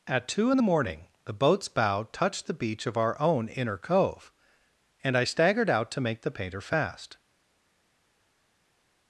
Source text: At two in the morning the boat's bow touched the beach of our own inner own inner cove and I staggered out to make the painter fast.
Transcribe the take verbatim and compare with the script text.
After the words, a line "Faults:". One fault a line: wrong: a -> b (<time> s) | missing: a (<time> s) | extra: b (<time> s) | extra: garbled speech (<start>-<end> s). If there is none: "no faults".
At two in the morning the boat's bow touched the beach of our own inner cove and I staggered out to make the painter fast.
Faults:
missing: own inner (3.8 s)